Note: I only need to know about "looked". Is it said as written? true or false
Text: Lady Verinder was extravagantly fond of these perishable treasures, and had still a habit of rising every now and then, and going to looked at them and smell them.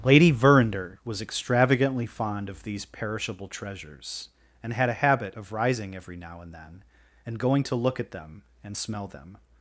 false